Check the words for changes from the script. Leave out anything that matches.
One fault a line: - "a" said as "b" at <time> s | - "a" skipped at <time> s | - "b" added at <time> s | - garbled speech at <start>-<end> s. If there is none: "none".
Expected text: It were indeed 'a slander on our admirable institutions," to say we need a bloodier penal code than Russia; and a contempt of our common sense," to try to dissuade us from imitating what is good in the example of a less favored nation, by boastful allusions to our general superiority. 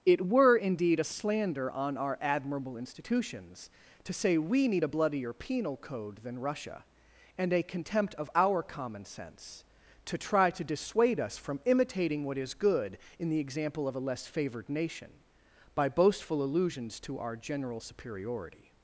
none